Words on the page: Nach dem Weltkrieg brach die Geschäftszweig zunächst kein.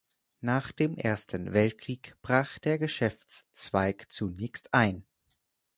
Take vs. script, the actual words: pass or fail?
fail